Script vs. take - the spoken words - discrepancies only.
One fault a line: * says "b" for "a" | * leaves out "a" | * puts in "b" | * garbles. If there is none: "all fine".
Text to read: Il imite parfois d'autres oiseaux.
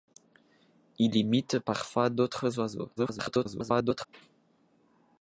* garbles